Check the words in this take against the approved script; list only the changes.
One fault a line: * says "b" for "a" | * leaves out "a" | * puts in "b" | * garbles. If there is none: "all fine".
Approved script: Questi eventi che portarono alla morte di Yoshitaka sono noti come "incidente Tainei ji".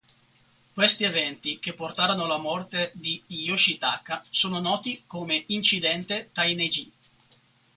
all fine